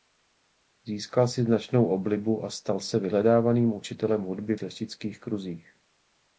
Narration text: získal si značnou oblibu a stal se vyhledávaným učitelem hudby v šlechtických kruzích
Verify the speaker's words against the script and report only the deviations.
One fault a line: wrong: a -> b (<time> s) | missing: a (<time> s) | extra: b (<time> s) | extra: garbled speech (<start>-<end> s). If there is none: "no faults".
no faults